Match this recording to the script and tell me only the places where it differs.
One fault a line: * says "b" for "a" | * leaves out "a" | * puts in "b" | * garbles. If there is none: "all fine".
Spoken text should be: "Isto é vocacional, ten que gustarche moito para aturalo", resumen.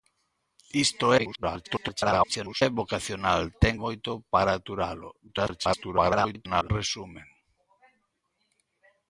* garbles
* leaves out "que gustarche"
* garbles